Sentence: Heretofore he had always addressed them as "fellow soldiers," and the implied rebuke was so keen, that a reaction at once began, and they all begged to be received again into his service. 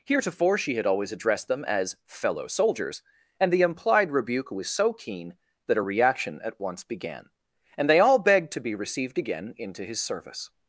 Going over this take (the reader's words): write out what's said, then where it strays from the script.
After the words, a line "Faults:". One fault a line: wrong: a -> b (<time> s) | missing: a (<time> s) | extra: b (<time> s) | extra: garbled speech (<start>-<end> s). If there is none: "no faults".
Heretofore she had always addressed them as "fellow soldiers," and the implied rebuke was so keen, that a reaction at once began, and they all begged to be received again into his service.
Faults:
wrong: he -> she (0.6 s)